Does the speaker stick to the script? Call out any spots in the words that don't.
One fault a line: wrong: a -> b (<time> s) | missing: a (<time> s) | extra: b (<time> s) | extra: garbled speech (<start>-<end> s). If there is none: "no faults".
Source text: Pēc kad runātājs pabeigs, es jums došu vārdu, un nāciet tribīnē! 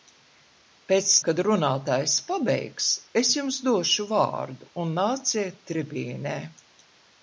no faults